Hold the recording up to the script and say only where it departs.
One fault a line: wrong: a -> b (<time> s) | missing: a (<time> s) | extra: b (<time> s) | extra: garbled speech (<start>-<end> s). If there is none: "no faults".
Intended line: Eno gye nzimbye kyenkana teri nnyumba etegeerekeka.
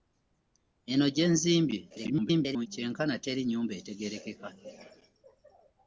extra: garbled speech (1.9-2.7 s)